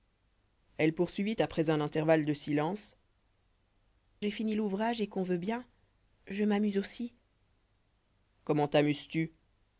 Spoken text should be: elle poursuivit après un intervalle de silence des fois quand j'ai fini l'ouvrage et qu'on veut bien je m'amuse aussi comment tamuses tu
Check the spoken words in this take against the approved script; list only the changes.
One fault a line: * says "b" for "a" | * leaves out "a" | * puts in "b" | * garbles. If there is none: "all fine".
* leaves out "des fois quand"